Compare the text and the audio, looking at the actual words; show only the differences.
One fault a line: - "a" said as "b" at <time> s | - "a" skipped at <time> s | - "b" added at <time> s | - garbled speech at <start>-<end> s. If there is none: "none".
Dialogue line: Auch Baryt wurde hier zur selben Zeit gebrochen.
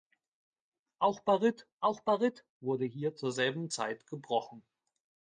- "auch Baryt" added at 1.8 s